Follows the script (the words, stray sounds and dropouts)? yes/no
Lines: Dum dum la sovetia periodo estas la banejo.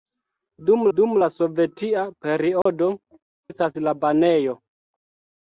no